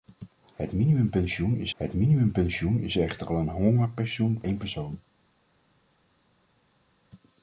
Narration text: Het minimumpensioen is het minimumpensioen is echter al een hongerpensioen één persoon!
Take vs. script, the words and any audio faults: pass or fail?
pass